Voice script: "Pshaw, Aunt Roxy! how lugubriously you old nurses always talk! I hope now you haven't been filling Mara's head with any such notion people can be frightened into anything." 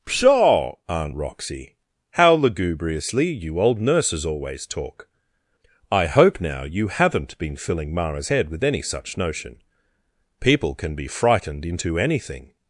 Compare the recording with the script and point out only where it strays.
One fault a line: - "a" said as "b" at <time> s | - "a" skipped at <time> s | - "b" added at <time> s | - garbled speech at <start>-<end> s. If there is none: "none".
none